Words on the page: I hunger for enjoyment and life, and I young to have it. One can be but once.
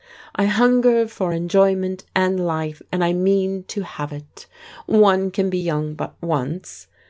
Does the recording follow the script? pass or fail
fail